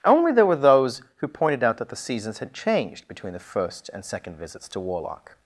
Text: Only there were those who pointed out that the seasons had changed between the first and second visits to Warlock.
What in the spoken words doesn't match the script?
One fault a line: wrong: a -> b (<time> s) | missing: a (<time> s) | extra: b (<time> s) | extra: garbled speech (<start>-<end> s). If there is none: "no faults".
no faults